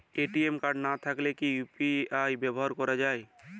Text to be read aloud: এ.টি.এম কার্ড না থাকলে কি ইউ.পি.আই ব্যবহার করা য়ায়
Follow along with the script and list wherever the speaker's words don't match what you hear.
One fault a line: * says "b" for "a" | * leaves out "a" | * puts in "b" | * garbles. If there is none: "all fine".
all fine